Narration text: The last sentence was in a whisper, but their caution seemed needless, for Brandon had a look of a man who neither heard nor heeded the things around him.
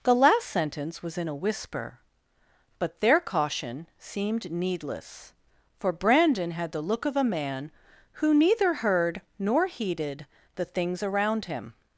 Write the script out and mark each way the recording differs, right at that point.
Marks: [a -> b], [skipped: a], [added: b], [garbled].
The last sentence was in a whisper, but their caution seemed needless, for Brandon had [a -> the] look of a man who neither heard nor heeded the things around him.